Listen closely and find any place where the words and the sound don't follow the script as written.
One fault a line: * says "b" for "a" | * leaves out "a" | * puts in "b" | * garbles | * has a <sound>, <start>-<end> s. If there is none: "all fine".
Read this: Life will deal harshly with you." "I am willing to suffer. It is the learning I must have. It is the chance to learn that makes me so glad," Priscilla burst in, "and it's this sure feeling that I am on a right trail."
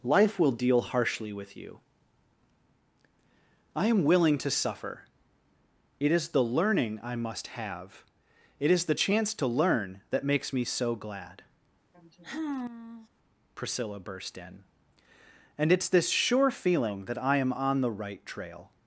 * has a sigh, 11.9-13.1 s
* says "the" for "a"